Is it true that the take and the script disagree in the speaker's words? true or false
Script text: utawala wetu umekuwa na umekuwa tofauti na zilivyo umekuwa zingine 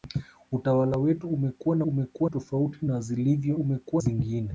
false